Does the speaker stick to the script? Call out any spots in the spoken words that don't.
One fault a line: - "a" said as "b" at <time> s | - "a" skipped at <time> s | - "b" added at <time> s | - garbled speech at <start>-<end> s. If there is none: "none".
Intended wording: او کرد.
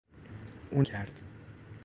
none